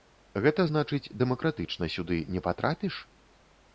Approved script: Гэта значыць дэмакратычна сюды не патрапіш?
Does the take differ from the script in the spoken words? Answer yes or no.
no